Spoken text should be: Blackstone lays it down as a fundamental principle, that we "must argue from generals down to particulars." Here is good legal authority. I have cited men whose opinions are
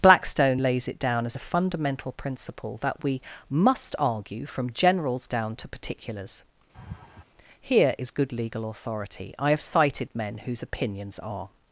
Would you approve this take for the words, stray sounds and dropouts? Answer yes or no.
no